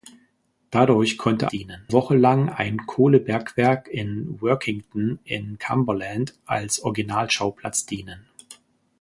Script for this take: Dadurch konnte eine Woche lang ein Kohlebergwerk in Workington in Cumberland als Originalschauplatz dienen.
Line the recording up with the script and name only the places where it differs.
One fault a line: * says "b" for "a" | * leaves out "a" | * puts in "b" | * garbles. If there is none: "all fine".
* says "dienen" for "eine"